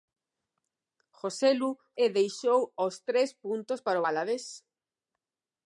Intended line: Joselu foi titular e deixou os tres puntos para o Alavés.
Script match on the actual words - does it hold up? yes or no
no